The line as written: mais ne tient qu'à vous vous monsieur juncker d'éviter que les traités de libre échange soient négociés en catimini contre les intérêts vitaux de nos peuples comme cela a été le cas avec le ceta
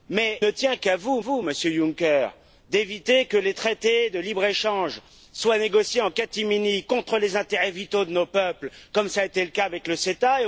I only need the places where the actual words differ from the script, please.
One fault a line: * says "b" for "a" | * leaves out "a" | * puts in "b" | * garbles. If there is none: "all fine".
all fine